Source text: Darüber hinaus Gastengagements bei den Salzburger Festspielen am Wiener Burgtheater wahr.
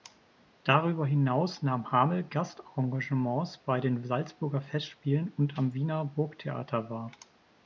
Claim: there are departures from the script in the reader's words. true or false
true